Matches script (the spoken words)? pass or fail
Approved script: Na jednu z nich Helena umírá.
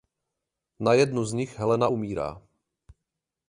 pass